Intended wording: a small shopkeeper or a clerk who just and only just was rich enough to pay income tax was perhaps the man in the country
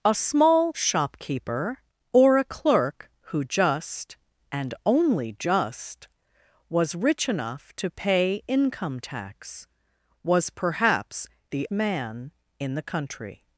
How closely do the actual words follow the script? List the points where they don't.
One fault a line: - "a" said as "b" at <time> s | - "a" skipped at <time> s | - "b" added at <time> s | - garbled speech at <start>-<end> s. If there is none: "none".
none